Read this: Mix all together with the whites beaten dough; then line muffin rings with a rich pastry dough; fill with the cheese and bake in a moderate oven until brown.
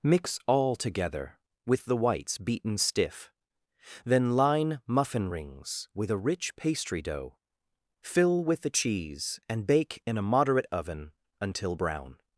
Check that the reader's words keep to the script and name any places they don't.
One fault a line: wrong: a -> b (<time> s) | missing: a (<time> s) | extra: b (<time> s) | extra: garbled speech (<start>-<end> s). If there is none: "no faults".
wrong: dough -> stiff (2.8 s)